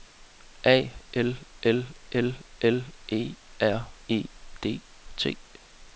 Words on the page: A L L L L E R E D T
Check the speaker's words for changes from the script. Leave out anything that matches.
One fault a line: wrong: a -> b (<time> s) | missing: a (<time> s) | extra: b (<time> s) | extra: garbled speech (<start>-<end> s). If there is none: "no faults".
no faults